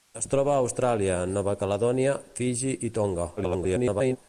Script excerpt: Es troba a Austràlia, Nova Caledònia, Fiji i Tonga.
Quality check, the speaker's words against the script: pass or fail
fail